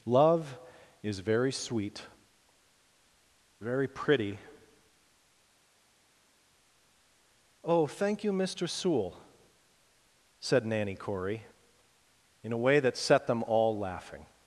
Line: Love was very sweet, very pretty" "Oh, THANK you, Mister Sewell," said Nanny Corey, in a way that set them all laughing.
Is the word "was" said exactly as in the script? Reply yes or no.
no